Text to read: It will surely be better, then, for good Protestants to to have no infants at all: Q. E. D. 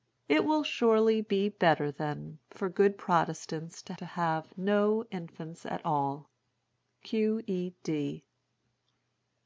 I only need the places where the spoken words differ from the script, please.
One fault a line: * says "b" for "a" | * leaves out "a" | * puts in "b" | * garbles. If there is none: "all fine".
all fine